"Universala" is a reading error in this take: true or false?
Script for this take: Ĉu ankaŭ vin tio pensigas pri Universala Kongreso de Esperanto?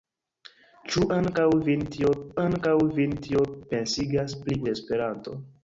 true